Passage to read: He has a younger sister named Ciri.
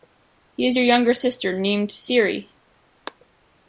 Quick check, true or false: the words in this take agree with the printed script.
true